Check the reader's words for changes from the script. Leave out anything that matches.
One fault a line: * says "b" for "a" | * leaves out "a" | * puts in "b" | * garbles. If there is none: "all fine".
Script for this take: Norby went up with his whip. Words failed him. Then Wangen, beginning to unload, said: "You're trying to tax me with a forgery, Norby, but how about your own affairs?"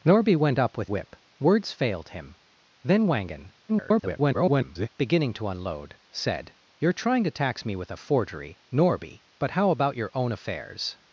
* leaves out "his"
* garbles